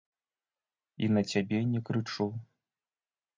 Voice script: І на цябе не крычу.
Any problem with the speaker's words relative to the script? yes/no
no